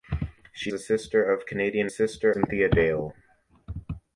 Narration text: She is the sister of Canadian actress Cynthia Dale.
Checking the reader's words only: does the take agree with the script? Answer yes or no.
no